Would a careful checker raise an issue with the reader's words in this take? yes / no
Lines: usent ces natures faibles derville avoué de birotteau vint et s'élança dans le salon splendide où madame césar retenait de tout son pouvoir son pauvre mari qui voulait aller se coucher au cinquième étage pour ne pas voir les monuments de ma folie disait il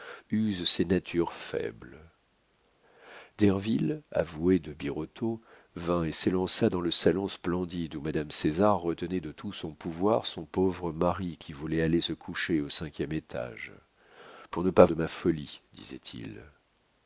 yes